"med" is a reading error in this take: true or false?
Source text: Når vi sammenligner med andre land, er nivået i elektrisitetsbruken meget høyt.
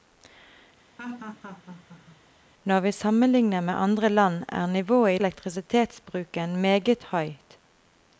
false